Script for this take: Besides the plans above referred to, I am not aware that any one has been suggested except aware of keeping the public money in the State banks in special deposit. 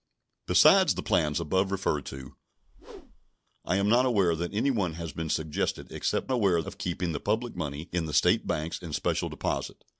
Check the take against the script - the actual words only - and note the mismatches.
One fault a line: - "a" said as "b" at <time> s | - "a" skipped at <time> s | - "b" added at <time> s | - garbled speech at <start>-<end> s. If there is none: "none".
none